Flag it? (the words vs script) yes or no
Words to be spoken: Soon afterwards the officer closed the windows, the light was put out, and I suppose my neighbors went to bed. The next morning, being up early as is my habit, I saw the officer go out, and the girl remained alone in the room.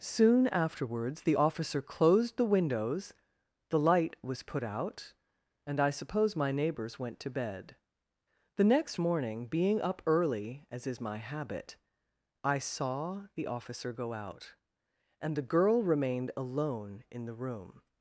no